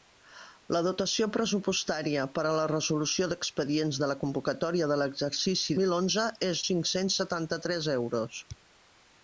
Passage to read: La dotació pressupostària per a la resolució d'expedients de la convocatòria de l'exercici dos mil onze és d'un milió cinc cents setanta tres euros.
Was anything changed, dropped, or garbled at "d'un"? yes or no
yes